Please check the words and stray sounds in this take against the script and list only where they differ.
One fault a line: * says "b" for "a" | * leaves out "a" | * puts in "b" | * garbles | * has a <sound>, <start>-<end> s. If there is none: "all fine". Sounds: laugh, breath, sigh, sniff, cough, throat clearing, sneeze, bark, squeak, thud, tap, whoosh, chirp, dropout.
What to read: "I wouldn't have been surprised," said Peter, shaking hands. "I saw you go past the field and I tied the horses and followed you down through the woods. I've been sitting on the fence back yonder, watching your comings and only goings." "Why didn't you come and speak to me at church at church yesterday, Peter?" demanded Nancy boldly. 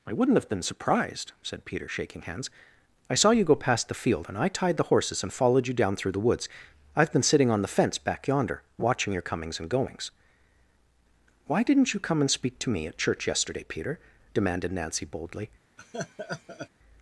* leaves out "only"
* leaves out "at church"
* has a laugh, 15.8-16.7 s